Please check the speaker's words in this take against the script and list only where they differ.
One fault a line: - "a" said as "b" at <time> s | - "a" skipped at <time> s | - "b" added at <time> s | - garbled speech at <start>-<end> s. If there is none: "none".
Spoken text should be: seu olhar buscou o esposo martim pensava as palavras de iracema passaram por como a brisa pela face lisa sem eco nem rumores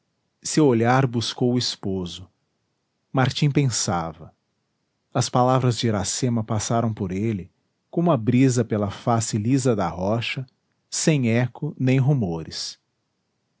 - "ele" added at 7.1 s
- "da rocha" added at 9.8 s